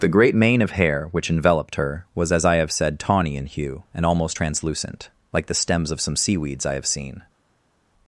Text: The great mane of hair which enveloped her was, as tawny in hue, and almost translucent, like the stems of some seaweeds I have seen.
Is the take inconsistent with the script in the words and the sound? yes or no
yes